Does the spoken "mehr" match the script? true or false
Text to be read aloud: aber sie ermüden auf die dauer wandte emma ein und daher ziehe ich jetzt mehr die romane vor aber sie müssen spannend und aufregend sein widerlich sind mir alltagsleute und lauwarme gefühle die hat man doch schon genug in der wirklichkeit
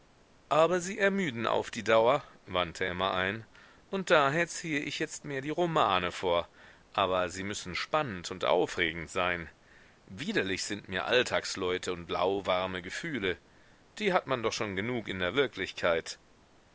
true